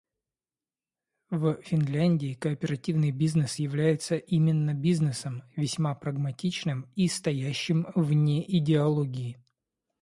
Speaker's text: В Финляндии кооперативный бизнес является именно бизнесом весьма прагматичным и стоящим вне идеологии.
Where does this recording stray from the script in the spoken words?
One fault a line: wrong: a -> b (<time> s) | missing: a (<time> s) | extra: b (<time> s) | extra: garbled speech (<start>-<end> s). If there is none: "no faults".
no faults